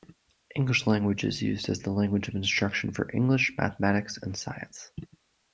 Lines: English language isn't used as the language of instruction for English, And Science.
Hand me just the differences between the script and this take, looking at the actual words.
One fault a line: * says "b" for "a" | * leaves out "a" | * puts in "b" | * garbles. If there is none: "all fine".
* says "is" for "isn't"
* puts in "Mathematics"